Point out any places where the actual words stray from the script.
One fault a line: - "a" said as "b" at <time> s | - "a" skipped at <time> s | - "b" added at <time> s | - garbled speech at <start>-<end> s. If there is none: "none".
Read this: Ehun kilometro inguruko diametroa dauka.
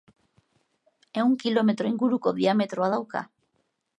none